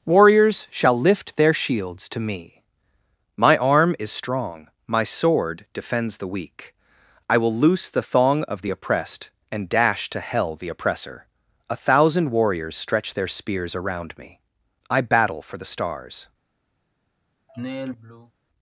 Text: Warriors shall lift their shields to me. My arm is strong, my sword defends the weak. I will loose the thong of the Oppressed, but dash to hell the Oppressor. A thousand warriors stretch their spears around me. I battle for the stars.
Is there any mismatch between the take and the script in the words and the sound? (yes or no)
yes